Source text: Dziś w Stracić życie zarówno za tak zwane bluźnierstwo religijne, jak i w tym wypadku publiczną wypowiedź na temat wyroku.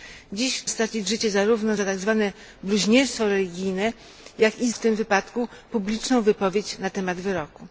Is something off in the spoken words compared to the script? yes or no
no